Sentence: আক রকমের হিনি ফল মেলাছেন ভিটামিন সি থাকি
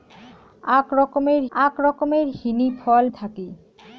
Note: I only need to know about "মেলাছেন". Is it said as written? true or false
false